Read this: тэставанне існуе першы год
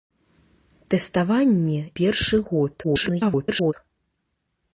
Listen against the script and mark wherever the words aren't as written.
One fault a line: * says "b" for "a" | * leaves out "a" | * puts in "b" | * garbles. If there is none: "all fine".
* leaves out "існуе"
* garbles